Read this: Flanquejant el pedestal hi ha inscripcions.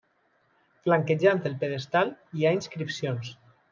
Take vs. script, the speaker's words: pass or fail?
pass